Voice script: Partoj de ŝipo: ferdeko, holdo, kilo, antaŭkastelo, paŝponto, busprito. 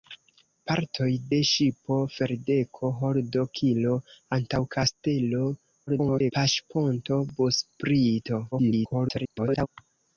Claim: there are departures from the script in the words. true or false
true